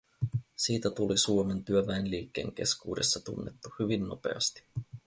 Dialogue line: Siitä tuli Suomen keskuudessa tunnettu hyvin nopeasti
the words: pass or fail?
fail